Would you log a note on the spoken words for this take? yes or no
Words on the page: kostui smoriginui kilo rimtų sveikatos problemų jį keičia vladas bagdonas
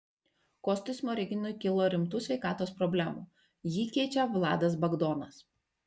no